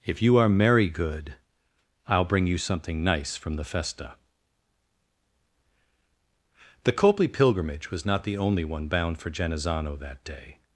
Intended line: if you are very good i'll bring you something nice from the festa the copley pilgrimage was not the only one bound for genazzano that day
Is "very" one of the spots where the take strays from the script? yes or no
yes